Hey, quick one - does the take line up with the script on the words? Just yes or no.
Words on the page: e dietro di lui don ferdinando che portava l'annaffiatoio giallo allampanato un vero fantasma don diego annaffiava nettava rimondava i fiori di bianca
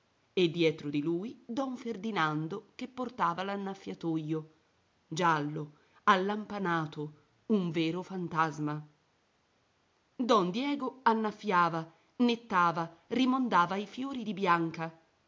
yes